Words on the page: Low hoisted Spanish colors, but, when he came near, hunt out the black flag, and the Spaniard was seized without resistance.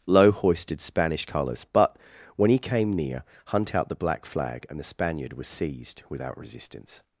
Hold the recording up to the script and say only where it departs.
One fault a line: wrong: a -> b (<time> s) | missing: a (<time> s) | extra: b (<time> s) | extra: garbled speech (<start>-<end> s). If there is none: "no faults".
no faults